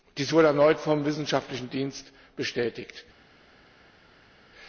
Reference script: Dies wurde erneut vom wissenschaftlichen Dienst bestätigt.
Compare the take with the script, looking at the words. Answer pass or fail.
pass